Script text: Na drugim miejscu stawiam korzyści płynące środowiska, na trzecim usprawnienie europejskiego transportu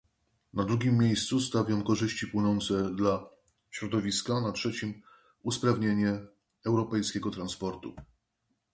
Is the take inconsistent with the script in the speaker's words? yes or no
yes